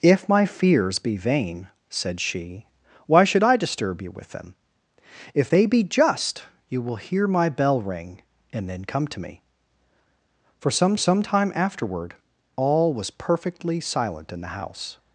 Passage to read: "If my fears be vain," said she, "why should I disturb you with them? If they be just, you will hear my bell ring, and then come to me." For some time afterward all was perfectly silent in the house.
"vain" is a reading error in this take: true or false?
false